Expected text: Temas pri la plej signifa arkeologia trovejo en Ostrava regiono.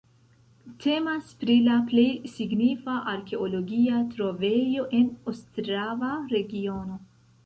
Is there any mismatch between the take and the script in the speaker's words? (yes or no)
no